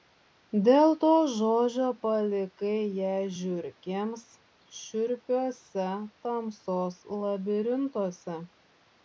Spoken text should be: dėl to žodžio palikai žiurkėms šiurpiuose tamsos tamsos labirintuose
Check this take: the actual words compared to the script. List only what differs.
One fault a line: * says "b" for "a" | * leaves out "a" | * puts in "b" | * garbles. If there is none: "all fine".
* puts in "ją"
* leaves out "tamsos"